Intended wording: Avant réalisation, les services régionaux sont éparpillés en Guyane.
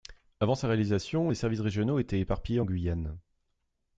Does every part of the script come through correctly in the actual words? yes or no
no